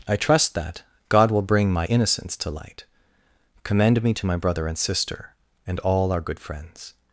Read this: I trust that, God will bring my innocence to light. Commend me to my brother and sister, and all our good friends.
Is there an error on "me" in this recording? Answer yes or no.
no